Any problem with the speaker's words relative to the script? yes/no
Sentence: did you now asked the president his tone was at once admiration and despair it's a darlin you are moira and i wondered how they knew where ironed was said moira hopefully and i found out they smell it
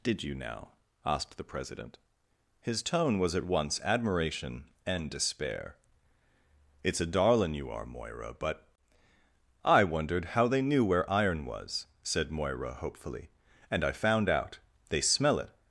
yes